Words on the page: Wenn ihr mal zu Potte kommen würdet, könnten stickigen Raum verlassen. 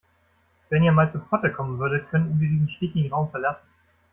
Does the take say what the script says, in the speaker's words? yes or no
no